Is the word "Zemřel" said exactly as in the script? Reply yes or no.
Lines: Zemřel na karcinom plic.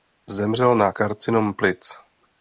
yes